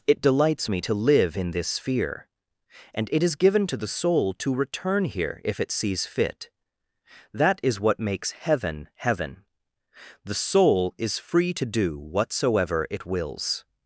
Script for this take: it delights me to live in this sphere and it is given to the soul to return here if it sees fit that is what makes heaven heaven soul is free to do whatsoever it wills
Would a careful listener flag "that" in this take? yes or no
no